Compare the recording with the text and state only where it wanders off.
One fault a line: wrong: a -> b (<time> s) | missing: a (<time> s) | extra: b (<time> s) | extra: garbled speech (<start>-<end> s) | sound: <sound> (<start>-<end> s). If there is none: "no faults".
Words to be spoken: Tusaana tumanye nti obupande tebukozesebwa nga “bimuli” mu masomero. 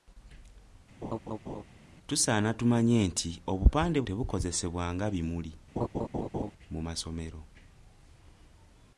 sound: laugh (1.0-1.6 s)
sound: laugh (5.8-6.5 s)